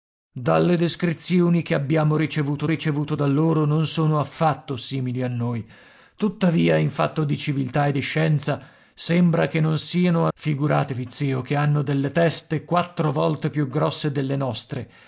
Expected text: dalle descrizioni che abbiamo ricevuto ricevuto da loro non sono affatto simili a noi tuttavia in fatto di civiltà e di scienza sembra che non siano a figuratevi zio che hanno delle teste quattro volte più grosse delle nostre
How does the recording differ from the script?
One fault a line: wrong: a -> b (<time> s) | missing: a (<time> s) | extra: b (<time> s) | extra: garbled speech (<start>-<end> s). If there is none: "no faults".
no faults